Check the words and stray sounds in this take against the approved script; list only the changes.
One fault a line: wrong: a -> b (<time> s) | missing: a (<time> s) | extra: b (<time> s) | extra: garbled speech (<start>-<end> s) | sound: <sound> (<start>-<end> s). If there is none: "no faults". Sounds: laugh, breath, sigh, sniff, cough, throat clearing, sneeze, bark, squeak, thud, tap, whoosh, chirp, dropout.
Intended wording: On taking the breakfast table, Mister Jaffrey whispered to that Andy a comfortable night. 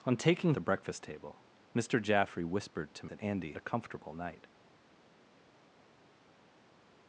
no faults